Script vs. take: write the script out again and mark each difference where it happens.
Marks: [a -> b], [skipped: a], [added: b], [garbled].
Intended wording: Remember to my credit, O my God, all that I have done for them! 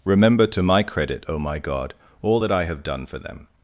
Remember to my credit, O my God, all that I have done for them!